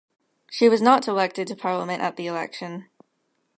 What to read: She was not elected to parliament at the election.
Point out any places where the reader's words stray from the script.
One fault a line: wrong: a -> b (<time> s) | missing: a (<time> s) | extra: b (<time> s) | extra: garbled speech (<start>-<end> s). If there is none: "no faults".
no faults